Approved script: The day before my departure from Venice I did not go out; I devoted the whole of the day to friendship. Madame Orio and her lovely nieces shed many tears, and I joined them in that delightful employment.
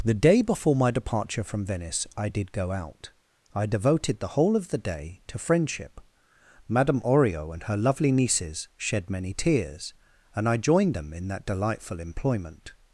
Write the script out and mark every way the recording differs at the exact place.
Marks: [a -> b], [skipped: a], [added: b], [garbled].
The day before my departure from Venice I did [skipped: not] go out; I devoted the whole of the day to friendship. Madame Orio and her lovely nieces shed many tears, and I joined them in that delightful employment.